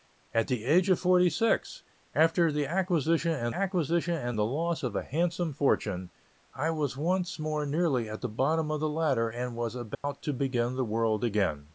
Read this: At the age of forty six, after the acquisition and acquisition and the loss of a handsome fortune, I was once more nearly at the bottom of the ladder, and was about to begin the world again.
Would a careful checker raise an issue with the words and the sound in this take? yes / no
yes